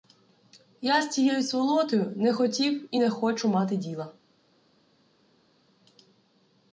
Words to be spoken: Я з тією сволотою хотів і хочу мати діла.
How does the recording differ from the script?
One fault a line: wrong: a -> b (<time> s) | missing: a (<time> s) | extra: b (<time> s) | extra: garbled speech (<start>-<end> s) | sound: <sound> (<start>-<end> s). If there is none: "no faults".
extra: не (2.1 s)
extra: не (3.0 s)